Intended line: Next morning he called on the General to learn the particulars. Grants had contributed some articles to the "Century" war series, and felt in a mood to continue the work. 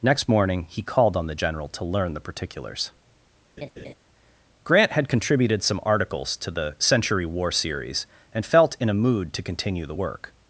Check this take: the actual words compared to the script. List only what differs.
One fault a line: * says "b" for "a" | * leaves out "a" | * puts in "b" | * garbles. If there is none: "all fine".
* says "Grant" for "Grants"